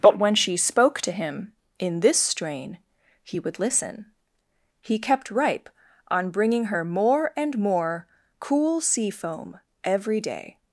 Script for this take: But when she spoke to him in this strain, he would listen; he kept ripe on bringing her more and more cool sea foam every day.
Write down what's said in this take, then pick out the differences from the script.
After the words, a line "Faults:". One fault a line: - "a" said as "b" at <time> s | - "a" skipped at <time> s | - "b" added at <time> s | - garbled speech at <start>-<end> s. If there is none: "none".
But when she spoke to him in this strain, he would listen; he kept ripe on bringing her more and more cool sea foam every day.
Faults:
none